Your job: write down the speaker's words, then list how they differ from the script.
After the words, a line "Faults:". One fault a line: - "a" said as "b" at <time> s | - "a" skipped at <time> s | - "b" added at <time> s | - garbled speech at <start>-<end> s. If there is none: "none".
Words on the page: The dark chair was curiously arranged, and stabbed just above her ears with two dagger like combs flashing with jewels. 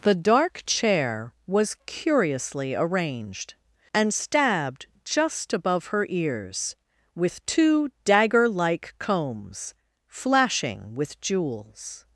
The dark chair was curiously arranged, and stabbed just above her ears with two dagger like combs flashing with jewels.
Faults:
none